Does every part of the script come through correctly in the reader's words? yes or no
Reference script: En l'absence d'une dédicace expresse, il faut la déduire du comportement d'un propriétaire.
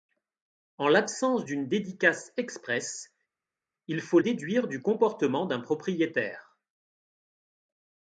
no